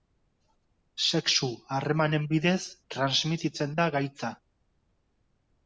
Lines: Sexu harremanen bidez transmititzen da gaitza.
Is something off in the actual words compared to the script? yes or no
no